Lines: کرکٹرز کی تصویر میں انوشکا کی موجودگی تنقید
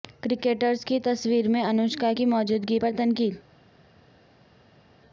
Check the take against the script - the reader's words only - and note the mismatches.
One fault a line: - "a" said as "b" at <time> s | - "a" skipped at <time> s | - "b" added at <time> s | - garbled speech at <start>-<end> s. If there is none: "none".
- "پر" added at 2.7 s